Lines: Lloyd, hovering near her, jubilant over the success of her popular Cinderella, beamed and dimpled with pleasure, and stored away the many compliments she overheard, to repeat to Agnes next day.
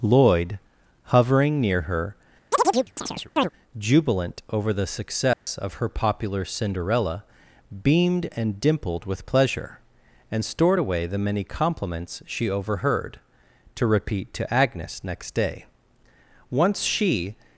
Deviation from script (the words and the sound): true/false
true